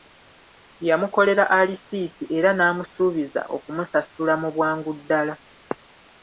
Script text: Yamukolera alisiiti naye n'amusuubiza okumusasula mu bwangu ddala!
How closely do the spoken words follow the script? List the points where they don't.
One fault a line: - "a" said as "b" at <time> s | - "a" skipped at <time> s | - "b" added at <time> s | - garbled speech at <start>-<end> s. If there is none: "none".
- "naye" said as "era" at 2.4 s